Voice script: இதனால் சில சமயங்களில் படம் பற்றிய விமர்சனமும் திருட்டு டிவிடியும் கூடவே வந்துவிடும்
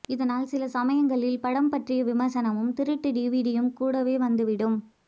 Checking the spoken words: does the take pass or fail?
pass